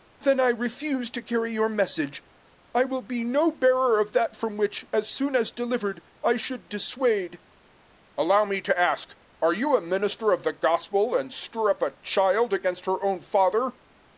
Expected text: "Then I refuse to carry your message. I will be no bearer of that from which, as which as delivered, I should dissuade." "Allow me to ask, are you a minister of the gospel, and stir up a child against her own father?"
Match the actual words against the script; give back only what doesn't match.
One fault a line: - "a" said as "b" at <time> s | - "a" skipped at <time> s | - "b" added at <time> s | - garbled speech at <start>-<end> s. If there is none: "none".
- "which" said as "soon" at 5.1 s